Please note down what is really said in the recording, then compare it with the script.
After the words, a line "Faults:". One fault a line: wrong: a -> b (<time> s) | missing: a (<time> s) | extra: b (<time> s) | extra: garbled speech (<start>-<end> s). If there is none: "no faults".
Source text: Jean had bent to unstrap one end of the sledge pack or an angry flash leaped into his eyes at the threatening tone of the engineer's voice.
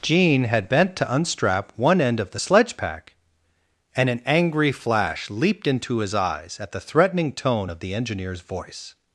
Jean had bent to unstrap one end of the sledge pack and an angry flash leaped into his eyes at the threatening tone of the engineer's voice.
Faults:
wrong: or -> and (3.9 s)